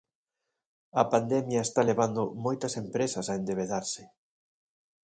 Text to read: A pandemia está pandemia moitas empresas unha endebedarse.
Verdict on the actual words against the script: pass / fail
fail